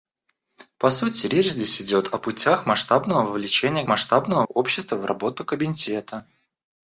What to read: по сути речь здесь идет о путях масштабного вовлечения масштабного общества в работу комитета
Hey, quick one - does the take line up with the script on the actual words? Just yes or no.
yes